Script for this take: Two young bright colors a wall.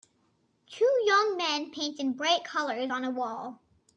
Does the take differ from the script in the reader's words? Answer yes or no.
yes